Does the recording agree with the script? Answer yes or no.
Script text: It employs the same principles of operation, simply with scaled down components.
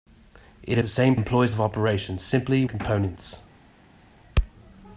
no